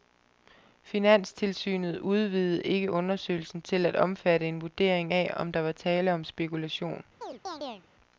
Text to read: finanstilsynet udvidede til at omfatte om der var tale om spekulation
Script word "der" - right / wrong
right